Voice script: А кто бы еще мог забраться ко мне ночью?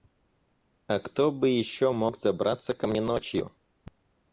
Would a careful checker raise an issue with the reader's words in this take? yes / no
no